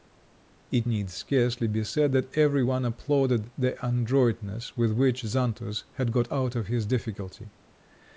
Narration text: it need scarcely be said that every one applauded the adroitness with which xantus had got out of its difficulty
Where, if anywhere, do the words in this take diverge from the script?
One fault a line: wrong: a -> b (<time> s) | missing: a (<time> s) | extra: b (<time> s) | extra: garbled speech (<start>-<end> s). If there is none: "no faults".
wrong: its -> his (6.7 s)